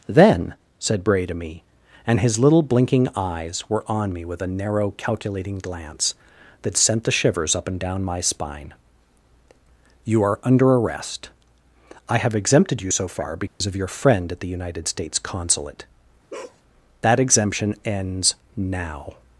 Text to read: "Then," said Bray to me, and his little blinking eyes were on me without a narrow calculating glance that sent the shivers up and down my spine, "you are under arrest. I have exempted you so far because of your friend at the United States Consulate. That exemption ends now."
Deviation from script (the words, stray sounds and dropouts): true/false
true